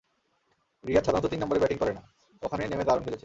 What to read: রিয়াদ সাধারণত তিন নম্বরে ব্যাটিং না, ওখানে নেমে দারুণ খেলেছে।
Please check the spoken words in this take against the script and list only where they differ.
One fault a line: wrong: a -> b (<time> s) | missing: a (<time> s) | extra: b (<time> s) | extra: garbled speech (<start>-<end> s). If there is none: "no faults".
extra: করে (1.8 s)